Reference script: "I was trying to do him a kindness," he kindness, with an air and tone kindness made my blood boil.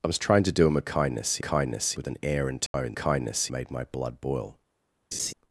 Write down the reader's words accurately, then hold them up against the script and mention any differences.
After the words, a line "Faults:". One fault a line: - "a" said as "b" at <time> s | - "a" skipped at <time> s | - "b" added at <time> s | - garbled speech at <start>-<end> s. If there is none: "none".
"I was trying to do him a kindness," he kindness, with an air and tone kindness made my blood boil.
Faults:
none